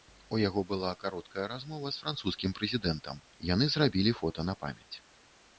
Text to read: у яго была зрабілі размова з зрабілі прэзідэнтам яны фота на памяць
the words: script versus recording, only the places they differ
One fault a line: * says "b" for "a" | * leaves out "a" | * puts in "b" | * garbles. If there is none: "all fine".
* says "кароткая" for "зрабілі"
* says "французскім" for "зрабілі"
* puts in "зрабілі"